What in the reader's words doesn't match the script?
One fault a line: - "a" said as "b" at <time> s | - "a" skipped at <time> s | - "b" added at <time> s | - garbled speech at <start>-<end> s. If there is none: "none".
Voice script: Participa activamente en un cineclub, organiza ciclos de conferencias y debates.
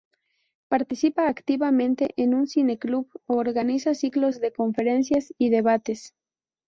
none